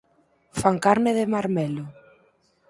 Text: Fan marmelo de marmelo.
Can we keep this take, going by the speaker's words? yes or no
no